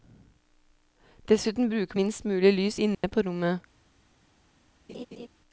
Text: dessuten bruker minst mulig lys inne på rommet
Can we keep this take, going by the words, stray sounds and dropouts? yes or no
no